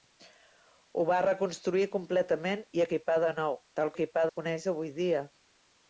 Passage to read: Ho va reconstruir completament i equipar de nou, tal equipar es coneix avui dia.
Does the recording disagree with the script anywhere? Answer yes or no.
no